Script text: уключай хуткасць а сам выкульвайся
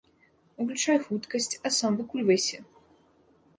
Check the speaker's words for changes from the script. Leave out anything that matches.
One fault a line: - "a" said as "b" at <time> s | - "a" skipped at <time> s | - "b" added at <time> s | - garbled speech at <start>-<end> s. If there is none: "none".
none